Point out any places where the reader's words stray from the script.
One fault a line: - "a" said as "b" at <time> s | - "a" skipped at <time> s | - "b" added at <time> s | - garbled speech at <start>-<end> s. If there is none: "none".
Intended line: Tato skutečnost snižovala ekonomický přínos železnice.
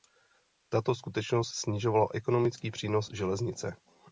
none